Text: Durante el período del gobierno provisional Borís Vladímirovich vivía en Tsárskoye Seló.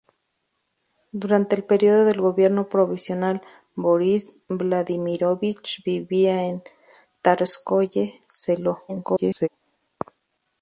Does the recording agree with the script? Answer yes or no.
no